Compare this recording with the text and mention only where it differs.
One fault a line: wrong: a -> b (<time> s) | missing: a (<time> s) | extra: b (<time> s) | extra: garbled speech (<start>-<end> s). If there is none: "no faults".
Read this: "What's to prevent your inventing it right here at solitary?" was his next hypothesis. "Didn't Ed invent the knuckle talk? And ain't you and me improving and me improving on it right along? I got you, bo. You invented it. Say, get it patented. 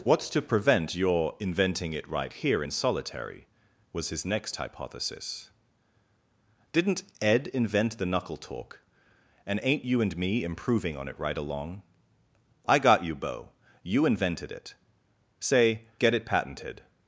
wrong: at -> in (2.6 s)
missing: and me improving (11.0 s)